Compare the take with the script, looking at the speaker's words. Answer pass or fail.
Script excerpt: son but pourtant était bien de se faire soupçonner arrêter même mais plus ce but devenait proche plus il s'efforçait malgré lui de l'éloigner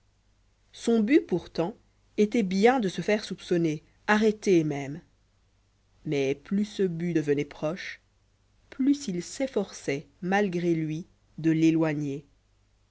pass